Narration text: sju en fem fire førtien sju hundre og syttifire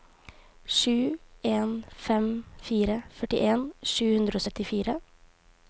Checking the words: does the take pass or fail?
pass